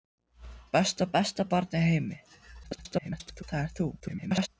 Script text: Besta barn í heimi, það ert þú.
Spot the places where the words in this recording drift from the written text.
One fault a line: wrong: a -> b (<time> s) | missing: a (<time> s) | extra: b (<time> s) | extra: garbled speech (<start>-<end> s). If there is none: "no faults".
extra: besta (1.2 s)
extra: garbled speech (2.6-3.4 s)
extra: garbled speech (4.0-4.5 s)